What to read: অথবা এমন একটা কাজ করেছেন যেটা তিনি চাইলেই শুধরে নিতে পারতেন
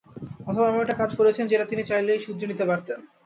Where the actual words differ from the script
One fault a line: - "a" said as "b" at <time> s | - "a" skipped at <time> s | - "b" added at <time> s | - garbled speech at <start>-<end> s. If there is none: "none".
none